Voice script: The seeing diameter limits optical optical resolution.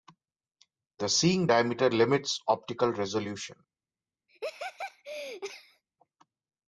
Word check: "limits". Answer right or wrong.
right